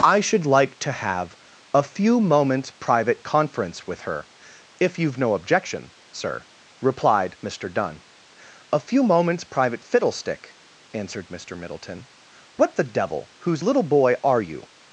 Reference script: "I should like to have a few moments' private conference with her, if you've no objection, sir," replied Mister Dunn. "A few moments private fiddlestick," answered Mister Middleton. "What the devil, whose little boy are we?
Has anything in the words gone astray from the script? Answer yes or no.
yes